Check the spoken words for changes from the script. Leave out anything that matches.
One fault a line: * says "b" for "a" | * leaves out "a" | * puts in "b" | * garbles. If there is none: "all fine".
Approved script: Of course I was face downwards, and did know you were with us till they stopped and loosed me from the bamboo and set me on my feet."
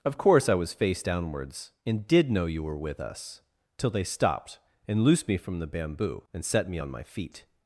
all fine